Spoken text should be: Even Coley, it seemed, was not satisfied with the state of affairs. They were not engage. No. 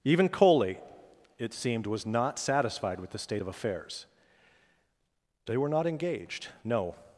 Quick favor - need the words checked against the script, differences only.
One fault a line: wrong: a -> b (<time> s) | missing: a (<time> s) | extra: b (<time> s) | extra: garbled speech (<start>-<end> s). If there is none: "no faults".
wrong: engage -> engaged (5.9 s)